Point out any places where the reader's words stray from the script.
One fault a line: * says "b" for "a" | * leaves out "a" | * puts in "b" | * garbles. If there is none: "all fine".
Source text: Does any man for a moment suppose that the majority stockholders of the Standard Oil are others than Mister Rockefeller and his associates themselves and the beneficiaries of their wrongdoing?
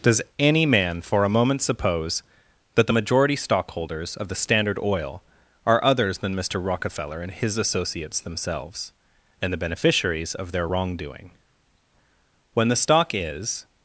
* puts in "When the stock is"